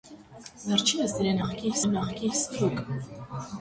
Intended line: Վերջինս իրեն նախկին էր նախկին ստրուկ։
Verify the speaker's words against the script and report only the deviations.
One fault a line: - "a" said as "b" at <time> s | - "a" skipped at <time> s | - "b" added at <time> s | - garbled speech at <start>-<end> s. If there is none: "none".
none